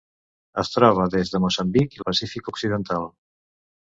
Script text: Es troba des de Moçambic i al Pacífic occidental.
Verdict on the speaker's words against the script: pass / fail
pass